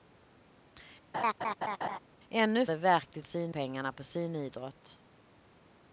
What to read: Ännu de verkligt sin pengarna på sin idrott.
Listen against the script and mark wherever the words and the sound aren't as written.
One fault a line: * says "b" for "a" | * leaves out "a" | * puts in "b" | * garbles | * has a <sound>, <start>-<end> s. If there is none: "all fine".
* has a laugh, 1.1-2.0 s